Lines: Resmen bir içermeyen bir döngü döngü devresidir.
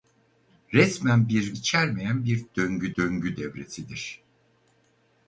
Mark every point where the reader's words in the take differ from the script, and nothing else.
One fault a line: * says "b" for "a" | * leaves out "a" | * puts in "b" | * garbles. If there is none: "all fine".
all fine